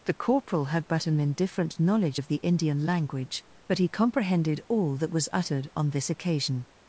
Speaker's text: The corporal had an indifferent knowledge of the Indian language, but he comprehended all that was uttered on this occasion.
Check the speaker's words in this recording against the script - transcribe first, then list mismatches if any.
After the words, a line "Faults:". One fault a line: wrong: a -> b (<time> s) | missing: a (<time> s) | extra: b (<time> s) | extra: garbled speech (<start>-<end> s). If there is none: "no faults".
The corporal had but an indifferent knowledge of the Indian language, but he comprehended all that was uttered on this occasion.
Faults:
extra: but (0.9 s)